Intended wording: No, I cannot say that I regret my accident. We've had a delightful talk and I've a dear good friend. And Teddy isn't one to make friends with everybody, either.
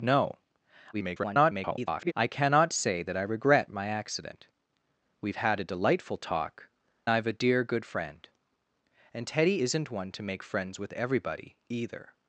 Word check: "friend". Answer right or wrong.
right